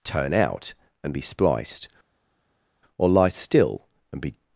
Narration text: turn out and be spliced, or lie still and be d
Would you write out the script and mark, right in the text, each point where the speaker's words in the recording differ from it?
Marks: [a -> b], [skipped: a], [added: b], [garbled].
turn out and be spliced, or lie still and be [skipped: d]